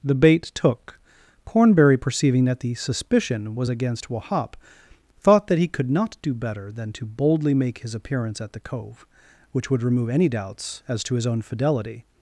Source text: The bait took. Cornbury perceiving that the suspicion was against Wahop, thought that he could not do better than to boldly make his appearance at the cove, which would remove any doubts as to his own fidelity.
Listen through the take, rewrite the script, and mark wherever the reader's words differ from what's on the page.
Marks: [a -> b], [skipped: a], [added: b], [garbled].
The bait took. Cornbury perceiving that the suspicion was against Wahop, thought that he could not do better than to boldly make his appearance at the cove, which would remove any doubts as to his own fidelity.